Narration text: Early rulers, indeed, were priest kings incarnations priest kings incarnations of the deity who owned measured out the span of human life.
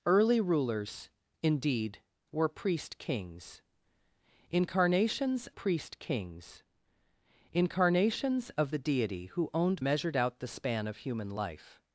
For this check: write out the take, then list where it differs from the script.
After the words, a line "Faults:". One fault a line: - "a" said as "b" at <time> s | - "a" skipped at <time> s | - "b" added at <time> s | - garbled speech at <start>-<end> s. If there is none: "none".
Early rulers, indeed, were priest kings incarnations priest kings incarnations of the deity who owned measured out the span of human life.
Faults:
none